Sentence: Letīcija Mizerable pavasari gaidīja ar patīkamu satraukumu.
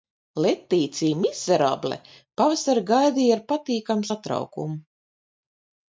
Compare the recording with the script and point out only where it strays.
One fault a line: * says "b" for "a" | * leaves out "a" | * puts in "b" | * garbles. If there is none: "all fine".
all fine